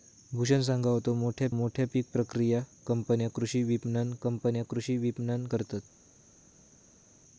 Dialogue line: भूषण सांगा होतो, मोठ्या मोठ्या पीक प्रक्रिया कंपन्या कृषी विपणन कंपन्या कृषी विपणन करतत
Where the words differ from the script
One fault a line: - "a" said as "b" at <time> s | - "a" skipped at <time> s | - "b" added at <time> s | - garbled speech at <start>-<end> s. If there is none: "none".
none